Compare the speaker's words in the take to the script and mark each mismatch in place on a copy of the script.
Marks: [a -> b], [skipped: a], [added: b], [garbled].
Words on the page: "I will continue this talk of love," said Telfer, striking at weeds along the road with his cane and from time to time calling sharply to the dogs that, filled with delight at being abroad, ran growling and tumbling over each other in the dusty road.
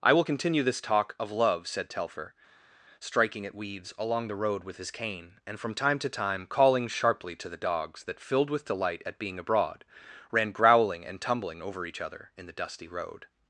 "I will continue this talk of love," said Telfer, striking at weeds along the road with his cane and from time to time calling sharply to the dogs that, filled with delight at being abroad, ran growling and tumbling over each other in the dusty road.